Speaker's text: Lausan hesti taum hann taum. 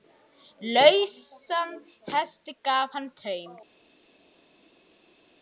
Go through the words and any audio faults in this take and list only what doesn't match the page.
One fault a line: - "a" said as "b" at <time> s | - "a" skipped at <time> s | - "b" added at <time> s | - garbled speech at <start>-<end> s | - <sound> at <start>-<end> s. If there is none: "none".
- "taum" said as "gaf" at 2.6 s